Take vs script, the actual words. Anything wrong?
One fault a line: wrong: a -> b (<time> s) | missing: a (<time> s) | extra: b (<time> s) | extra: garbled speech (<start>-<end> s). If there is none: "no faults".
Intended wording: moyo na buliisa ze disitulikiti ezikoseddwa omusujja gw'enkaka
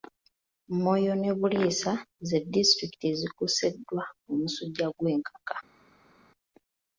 wrong: na -> ne (1.2 s)